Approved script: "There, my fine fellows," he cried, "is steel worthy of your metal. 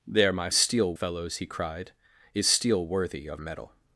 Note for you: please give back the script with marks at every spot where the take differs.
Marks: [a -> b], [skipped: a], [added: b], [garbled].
"There, my [fine -> steel] fellows," he cried, "is steel worthy of [skipped: your] metal.